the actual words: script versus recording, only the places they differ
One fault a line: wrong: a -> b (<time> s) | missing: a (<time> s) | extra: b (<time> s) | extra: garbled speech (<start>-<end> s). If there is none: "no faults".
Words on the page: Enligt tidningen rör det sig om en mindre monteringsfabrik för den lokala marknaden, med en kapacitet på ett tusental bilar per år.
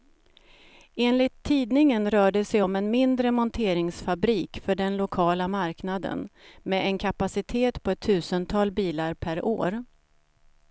no faults